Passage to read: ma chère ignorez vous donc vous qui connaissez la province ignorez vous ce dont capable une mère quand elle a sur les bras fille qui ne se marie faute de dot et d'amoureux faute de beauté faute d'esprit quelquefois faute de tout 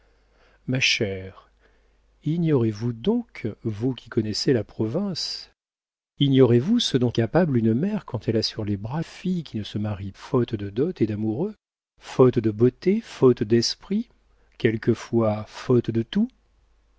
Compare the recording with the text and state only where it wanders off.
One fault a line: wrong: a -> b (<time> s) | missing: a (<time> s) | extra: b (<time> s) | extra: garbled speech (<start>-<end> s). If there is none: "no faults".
no faults